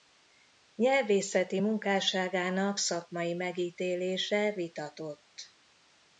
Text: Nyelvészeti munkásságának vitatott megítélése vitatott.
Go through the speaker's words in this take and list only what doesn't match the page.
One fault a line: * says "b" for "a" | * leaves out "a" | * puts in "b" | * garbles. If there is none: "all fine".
* says "szakmai" for "vitatott"